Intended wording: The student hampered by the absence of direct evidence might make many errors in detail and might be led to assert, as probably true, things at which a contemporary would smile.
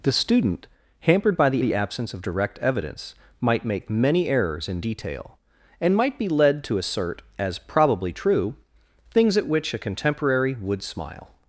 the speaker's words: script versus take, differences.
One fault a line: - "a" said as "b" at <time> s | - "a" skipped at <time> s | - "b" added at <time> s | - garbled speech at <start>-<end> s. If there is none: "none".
- "the" added at 1.6 s